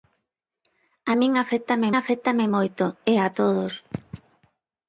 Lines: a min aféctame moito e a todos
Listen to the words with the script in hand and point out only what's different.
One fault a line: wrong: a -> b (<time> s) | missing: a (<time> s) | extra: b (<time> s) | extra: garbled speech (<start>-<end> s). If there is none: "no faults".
extra: aféctame (2.0 s)